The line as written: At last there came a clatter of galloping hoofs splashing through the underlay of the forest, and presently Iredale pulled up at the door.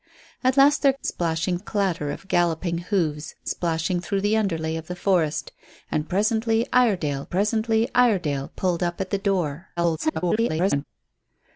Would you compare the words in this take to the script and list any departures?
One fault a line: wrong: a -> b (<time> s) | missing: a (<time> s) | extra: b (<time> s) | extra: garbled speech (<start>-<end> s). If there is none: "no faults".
wrong: came -> splashing (1.0 s)
extra: presently Iredale (7.3 s)
extra: garbled speech (9.8-10.8 s)